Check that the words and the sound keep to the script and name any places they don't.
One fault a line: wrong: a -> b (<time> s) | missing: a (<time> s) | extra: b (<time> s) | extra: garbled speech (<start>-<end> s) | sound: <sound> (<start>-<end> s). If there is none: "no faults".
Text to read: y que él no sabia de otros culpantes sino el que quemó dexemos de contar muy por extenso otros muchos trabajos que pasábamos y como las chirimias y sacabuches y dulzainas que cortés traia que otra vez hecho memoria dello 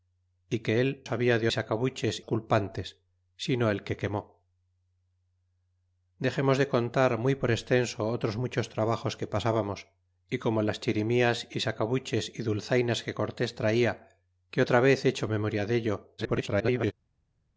missing: no (1.1 s)
wrong: otros -> sacabuches (1.5 s)
extra: garbled speech (16.2-16.9 s)